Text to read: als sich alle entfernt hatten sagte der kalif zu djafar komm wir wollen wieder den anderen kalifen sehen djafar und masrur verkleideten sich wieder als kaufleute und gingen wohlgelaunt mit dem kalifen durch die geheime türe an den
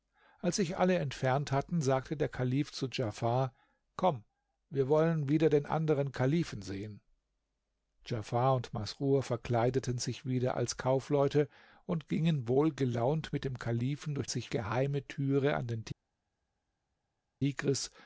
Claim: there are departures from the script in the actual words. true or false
true